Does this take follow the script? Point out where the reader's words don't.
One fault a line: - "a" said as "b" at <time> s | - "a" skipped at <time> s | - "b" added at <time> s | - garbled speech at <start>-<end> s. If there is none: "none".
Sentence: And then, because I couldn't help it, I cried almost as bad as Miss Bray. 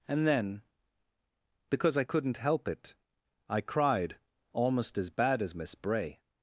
none